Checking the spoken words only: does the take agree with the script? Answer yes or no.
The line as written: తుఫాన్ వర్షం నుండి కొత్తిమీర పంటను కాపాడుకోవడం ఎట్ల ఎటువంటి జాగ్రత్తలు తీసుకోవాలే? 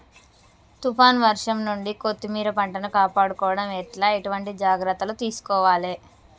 yes